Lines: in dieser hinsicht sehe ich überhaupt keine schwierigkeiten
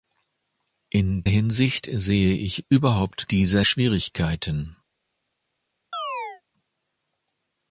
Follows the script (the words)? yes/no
no